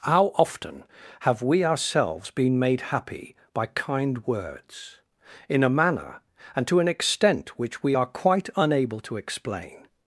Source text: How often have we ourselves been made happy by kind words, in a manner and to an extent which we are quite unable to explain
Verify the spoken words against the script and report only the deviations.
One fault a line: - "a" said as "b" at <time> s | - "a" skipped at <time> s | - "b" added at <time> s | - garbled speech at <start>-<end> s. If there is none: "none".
none